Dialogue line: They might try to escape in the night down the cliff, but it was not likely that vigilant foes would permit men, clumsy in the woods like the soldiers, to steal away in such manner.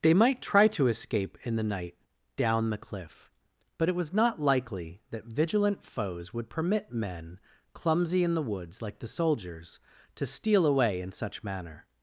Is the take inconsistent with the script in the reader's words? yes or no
no